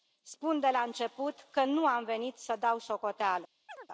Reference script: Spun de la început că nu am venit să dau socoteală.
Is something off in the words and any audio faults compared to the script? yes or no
yes